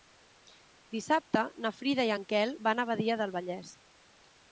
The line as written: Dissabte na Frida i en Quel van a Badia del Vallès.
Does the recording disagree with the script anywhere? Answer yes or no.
no